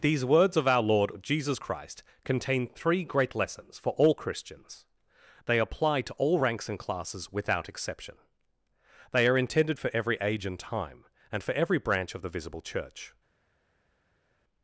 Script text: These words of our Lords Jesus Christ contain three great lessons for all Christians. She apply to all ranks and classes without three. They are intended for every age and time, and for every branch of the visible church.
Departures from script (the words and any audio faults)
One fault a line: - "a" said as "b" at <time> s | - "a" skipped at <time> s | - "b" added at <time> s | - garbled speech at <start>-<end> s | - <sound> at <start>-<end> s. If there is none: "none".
- "Lords" said as "Lord" at 0.8 s
- "She" said as "They" at 5.4 s
- "three" said as "exception" at 7.7 s